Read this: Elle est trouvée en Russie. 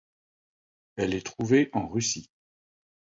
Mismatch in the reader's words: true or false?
false